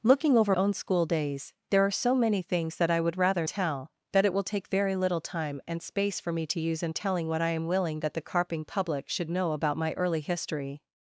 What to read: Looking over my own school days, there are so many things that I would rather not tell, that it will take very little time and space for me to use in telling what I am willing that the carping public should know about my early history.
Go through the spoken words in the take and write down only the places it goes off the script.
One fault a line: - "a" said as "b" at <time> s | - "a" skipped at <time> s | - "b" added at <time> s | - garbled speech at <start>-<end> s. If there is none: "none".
- "my" skipped at 0.6 s
- "not" skipped at 3.5 s